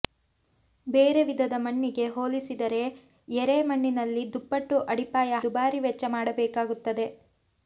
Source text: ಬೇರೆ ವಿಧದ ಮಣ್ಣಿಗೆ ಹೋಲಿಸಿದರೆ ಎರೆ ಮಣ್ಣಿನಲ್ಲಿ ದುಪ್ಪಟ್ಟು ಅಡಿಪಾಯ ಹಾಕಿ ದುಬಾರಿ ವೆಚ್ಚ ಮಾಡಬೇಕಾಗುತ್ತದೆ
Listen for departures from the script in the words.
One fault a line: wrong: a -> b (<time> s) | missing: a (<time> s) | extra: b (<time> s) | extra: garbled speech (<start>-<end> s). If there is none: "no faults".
missing: ಹಾಕಿ (5.4 s)